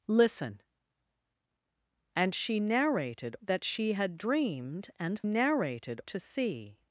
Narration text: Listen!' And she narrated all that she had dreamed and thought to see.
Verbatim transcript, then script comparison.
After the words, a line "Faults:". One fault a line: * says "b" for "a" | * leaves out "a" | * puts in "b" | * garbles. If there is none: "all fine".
Listen!' And she narrated that she had dreamed and narrated to see.
Faults:
* leaves out "all"
* says "narrated" for "thought"